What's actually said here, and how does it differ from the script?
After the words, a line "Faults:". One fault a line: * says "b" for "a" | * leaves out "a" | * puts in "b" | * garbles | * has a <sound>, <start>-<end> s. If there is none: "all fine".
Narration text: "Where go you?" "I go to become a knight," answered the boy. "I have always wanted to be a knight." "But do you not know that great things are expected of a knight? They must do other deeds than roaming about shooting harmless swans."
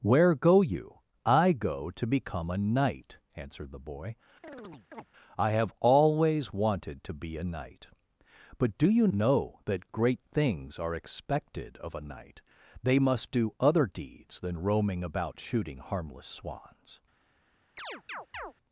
"Where go you?" "I go to become a knight," answered the boy. "I have always wanted to be a knight." "But do you know that great things are expected of a knight? They must do other deeds than roaming about shooting harmless swans."
Faults:
* has a chirp, 4.4-5.1 s
* leaves out "not"
* has a chirp, 17.8-18.5 s